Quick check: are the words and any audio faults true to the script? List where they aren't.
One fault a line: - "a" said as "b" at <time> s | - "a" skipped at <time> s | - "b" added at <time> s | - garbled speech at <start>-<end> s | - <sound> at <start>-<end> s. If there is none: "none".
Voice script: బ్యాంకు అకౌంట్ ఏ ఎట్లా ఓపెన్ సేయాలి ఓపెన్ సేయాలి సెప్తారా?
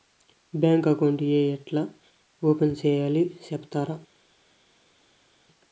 - "ఓపెన్ సేయాలి" skipped at 3.2 s